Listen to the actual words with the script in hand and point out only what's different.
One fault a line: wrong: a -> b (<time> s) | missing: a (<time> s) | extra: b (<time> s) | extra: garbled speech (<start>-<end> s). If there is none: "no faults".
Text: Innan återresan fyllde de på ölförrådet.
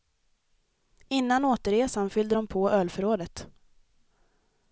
no faults